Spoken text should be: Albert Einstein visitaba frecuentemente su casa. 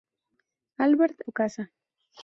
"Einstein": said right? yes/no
no